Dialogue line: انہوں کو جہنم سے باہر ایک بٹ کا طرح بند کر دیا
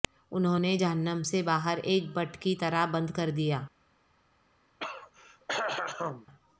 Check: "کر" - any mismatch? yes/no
no